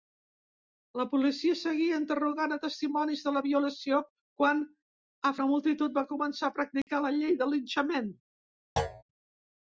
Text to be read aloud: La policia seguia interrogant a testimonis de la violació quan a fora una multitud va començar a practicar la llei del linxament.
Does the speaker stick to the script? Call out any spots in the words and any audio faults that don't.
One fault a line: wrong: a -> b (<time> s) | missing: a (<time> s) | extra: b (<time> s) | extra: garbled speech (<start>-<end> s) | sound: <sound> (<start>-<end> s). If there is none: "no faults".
missing: fora (5.3 s)
sound: dropout (6.8-6.9 s)
sound: thud (8.8-9.0 s)